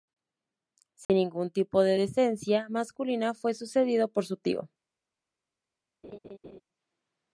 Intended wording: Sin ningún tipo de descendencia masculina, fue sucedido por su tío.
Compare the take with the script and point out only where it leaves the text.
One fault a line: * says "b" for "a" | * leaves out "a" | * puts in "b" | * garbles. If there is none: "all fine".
all fine